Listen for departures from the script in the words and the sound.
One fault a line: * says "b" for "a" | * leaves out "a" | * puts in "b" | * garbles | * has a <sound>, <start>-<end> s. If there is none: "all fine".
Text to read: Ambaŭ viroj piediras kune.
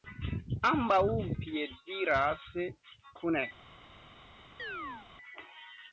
* leaves out "viroj"
* has a chirp, 4.6-5.1 s